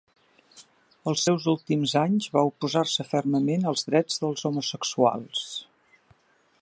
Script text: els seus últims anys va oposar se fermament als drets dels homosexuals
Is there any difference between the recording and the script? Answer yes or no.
no